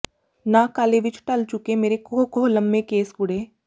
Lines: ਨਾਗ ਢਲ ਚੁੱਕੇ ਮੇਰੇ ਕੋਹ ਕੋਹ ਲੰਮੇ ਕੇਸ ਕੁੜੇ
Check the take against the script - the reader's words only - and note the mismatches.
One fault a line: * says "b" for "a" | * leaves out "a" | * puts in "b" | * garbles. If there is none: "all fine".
* puts in "ਕਾਲੇ ਵਿੱਚ"